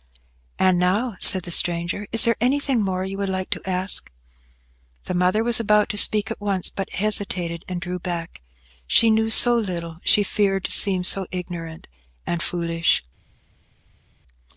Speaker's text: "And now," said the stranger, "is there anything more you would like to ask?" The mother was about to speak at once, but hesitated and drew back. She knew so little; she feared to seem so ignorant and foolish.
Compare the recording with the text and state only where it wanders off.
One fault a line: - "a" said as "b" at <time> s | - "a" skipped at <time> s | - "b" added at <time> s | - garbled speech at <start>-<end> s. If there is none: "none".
none